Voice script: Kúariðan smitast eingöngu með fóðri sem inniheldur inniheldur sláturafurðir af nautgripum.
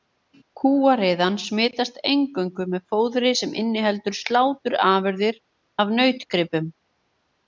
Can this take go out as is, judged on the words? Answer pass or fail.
fail